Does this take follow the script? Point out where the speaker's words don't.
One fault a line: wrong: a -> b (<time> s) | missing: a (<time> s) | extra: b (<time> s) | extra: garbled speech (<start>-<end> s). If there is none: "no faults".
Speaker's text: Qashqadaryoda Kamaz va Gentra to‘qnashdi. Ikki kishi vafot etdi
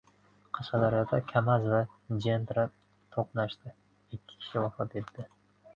no faults